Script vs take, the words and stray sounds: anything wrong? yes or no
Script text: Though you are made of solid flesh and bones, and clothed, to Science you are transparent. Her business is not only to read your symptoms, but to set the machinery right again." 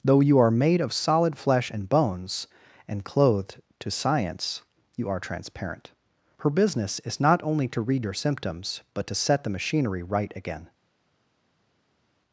no